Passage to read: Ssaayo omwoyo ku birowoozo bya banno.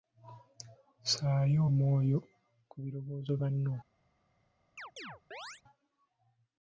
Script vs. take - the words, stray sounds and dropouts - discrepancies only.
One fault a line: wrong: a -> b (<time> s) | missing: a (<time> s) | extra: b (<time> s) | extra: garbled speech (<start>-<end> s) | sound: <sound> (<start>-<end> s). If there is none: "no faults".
missing: bya (3.3 s)
sound: chirp (4.8-5.6 s)